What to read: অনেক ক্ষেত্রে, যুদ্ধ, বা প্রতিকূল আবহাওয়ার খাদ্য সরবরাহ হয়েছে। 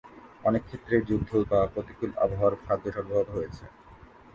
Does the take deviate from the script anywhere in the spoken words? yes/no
no